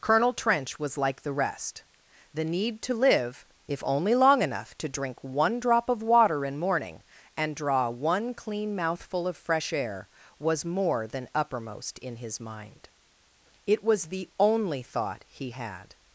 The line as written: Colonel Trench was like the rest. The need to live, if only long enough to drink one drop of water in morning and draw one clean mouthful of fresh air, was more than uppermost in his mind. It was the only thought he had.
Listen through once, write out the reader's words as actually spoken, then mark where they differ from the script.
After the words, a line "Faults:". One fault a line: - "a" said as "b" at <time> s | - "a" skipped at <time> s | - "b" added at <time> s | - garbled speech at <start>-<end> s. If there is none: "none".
Colonel Trench was like the rest. The need to live, if only long enough to drink one drop of water in morning and draw one clean mouthful of fresh air, was more than uppermost in his mind. It was the only thought he had.
Faults:
none